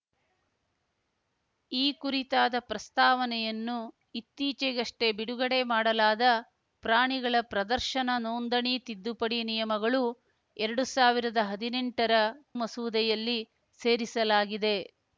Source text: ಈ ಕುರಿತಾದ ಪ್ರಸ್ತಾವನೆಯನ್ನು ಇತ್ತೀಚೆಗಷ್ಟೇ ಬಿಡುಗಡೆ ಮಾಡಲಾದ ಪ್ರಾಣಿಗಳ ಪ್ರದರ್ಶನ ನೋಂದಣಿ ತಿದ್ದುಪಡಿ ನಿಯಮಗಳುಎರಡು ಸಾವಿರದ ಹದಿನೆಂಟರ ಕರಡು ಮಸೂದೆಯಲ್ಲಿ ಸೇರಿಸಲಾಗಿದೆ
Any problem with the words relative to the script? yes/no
yes